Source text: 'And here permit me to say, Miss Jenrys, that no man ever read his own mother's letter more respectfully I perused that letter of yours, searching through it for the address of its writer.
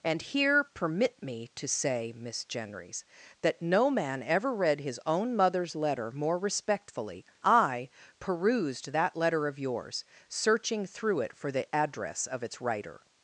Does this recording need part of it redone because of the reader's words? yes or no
no